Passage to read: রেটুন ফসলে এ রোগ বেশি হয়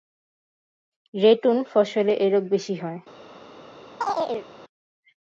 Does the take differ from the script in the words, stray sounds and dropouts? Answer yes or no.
yes